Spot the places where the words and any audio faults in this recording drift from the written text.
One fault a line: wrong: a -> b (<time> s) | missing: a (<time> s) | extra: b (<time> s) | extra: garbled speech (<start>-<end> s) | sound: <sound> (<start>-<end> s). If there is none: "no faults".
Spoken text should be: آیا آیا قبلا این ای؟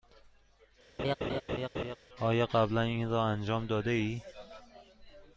sound: laugh (1.0-2.0 s)
missing: آیا (2.5 s)
extra: را انجام داده (3.1 s)